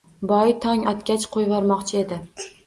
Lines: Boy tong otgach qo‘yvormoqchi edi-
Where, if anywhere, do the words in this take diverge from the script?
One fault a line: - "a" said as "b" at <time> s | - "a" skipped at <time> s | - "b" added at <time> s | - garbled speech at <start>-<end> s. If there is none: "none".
none